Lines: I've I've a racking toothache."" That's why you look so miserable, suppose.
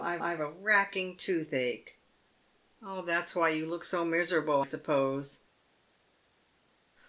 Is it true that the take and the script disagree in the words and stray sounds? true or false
false